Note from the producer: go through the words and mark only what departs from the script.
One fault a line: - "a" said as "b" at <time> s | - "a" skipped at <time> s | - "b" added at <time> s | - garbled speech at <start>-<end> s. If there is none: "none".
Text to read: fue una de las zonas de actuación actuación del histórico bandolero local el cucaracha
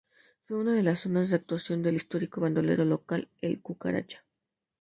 - "actuación" skipped at 1.8 s